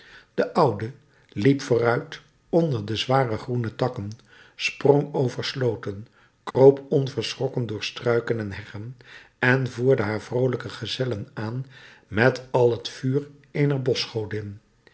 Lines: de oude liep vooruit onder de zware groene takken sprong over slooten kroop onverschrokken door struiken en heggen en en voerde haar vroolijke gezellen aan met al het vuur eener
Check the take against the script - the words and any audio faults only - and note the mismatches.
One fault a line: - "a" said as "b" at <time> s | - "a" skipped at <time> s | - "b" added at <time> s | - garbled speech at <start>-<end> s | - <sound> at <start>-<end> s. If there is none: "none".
- dropout at 6.5-6.5 s
- "en" skipped at 9.7 s